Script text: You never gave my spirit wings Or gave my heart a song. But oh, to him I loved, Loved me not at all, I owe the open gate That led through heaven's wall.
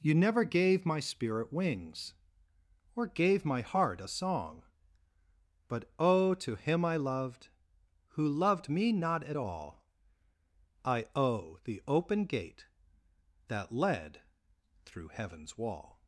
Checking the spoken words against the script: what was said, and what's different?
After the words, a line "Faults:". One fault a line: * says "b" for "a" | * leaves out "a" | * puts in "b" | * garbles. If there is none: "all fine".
You never gave my spirit wings Or gave my heart a song. But oh, to him I loved, Who loved me not at all, I owe the open gate That led through heaven's wall.
Faults:
* puts in "Who"